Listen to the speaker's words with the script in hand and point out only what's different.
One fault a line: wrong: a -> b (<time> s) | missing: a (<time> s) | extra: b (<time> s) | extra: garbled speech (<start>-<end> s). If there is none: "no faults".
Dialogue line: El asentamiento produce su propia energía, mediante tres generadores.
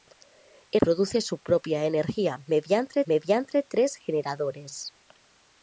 missing: asentamiento (0.8 s)
extra: mediante (3.0 s)